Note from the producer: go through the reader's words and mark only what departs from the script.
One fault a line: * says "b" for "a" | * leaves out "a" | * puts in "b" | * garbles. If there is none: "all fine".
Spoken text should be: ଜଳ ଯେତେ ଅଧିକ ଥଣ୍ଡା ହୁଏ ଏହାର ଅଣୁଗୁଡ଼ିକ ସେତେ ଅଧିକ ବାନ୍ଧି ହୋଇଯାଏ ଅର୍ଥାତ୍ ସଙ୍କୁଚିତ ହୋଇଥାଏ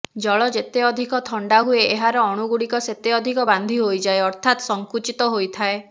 all fine